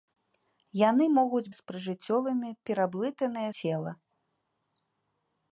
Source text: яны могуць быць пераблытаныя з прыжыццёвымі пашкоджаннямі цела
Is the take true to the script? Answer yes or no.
no